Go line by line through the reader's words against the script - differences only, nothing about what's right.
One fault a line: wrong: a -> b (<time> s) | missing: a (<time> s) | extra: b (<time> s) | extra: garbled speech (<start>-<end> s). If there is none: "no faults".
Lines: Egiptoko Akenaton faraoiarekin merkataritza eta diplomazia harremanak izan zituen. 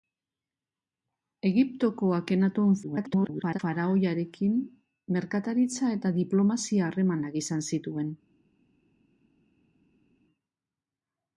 extra: garbled speech (2.8-3.6 s)